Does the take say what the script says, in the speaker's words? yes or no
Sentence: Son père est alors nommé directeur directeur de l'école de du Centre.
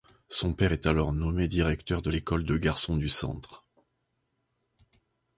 no